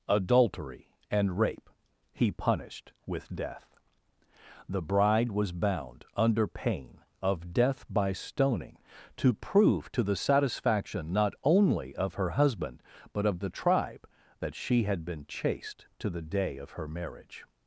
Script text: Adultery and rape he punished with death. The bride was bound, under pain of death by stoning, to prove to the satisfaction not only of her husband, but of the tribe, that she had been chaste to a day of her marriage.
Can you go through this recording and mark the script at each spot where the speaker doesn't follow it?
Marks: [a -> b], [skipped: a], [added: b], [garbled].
Adultery and rape he punished with death. The bride was bound, under pain of death by stoning, to prove to the satisfaction not only of her husband, but of the tribe, that she had been chaste to [a -> the] day of her marriage.